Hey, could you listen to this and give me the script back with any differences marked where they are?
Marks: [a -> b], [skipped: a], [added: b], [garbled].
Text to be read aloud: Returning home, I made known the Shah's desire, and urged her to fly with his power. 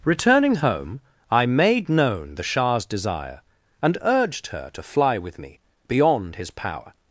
Returning home, I made known the Shah's desire, and urged her to fly with [added: me beyond] his power.